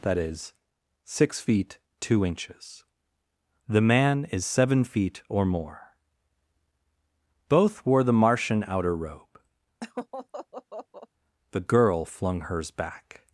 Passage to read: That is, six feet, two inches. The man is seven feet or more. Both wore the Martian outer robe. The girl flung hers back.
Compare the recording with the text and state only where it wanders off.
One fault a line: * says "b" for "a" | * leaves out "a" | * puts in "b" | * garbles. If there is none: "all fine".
all fine